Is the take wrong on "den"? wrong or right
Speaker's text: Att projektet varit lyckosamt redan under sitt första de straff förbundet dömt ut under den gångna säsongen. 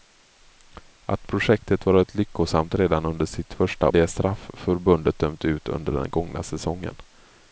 right